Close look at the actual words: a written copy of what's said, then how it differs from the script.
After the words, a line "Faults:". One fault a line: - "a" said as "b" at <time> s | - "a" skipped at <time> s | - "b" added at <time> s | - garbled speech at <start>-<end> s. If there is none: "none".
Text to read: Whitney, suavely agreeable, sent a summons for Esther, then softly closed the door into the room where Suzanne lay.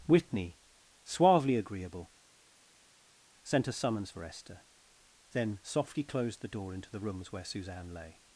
Whitney, suavely agreeable, sent a summons for Esther, then softly closed the door into the rooms where Suzanne lay.
Faults:
- "room" said as "rooms" at 7.0 s